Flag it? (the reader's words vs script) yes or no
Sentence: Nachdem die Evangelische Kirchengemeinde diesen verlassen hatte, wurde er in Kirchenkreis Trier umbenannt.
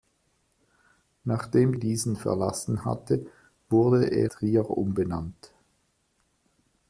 yes